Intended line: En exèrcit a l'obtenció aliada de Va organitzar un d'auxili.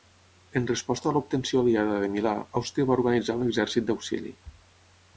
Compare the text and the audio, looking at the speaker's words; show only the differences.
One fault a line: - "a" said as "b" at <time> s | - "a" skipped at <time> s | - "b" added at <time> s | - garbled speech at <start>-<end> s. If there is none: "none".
- "exèrcit" said as "resposta" at 0.7 s
- "Milà Àustria" added at 2.1 s
- "exèrcit" added at 3.5 s